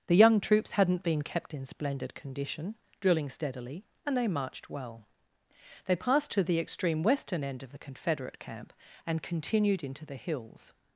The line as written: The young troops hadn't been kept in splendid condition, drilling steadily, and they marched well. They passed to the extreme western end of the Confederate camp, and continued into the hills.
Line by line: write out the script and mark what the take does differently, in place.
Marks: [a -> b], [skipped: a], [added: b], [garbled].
The young troops hadn't been kept in splendid condition, drilling steadily, and they marched well. They passed to the extreme western end of the Confederate camp, and continued into the hills.